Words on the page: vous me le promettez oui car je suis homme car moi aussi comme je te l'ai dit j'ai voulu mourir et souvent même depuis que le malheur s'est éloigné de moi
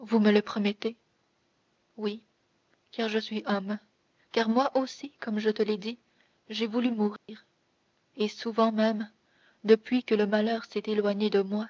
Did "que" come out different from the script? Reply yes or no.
no